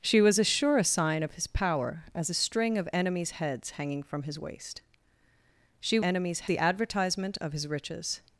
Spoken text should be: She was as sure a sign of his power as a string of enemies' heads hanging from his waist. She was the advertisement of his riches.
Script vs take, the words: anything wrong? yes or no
yes